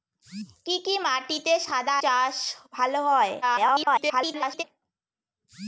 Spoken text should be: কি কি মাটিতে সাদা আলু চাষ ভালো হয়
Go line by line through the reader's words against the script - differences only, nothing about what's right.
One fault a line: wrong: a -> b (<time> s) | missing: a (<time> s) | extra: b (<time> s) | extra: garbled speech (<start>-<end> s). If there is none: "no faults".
missing: আলু (1.9 s)
extra: garbled speech (3.4-4.6 s)